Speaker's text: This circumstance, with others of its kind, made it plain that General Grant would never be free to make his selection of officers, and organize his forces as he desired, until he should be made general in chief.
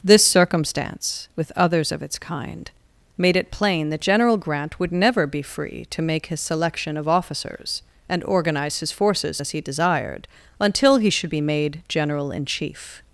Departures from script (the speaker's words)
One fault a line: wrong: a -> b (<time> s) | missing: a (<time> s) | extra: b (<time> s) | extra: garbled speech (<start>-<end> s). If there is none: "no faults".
no faults